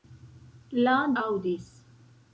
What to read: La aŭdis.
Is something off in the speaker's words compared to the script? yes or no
no